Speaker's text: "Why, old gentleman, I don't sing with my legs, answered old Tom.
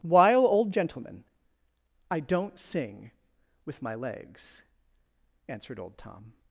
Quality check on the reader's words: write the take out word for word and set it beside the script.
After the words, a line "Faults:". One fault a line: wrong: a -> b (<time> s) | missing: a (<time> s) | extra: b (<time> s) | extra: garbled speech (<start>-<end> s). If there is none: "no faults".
"While, old gentleman, I don't sing with my legs, answered old Tom.
Faults:
wrong: Why -> While (0.0 s)